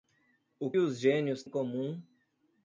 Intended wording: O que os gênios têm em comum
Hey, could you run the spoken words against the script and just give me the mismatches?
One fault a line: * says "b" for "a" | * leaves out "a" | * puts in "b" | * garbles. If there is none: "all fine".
* leaves out "que"
* leaves out "têm"